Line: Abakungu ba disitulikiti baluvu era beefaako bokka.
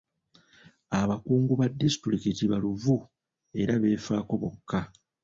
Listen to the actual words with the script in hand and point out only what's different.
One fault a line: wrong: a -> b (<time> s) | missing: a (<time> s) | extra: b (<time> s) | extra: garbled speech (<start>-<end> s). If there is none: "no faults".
no faults